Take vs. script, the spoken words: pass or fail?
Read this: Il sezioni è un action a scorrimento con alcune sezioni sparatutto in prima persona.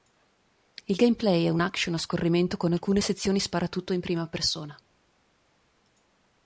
fail